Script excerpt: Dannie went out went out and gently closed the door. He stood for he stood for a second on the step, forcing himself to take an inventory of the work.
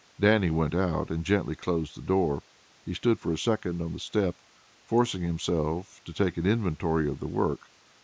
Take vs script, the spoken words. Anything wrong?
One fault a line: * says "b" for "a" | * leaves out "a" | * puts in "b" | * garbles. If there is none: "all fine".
* leaves out "went out"
* leaves out "he stood for"